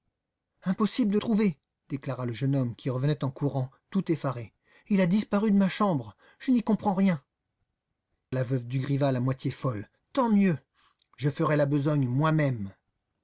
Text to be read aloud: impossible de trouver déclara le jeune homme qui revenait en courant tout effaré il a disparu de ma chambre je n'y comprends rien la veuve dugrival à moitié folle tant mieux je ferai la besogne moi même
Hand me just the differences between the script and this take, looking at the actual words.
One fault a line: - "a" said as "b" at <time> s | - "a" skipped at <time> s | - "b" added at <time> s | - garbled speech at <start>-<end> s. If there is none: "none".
none